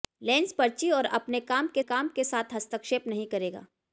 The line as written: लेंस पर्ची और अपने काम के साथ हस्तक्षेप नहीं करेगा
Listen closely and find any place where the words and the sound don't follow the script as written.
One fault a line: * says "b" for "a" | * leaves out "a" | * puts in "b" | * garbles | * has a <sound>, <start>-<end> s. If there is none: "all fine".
* puts in "काम के"